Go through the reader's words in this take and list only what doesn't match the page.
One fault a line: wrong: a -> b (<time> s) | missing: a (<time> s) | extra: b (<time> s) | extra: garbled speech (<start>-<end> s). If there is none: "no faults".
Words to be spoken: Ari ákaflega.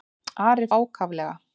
no faults